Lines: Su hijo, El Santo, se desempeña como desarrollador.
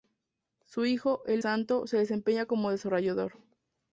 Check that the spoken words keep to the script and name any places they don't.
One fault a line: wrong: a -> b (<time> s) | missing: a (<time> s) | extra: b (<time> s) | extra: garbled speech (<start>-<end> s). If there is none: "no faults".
no faults